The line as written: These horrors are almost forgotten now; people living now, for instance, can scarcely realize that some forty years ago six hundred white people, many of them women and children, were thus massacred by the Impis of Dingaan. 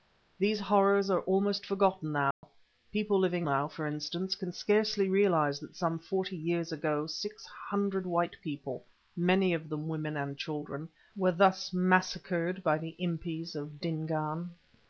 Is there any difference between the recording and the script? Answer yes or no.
no